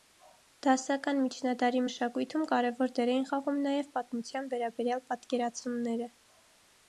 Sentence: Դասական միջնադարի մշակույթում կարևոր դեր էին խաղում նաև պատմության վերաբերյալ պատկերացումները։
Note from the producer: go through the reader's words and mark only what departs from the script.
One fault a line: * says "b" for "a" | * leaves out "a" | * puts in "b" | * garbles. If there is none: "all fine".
all fine